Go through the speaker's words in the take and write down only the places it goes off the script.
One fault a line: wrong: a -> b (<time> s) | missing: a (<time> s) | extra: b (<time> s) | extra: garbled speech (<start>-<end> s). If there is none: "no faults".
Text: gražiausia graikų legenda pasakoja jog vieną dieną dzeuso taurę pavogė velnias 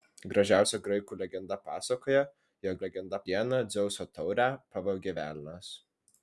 wrong: vieną -> legenda (2.8 s)